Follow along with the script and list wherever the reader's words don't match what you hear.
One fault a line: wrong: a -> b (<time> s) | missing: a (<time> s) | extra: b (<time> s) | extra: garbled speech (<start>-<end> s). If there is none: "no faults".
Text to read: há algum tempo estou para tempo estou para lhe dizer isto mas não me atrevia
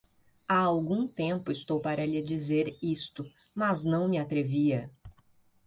missing: tempo estou para (2.1 s)